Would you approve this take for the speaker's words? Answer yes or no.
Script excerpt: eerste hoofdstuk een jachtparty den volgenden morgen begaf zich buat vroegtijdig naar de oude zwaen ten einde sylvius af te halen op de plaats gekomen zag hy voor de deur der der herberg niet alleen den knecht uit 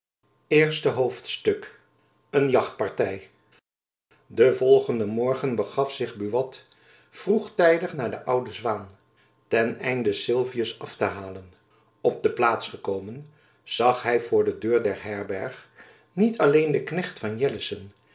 no